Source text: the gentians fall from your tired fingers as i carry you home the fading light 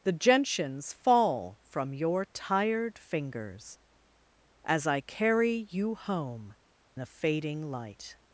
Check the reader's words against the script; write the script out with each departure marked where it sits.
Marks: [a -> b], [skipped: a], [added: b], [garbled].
the gentians fall from your tired fingers as i carry you home the fading light